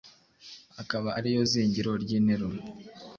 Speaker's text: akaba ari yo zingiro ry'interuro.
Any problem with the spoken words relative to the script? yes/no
no